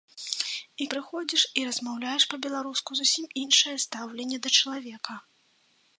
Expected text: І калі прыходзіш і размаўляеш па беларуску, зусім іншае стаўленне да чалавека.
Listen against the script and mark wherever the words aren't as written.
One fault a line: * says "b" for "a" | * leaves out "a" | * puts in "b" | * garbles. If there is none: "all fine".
* leaves out "калі"